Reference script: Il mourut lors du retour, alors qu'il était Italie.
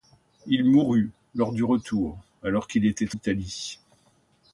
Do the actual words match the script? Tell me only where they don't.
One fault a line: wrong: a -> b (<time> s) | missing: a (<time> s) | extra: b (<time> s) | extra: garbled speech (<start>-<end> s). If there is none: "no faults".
no faults